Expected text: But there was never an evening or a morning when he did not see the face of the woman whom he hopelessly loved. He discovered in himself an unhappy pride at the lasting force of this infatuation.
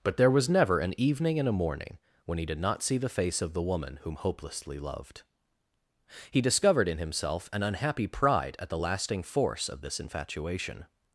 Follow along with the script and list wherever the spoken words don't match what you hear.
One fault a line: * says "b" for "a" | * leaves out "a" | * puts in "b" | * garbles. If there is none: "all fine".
* says "and" for "or"
* leaves out "he"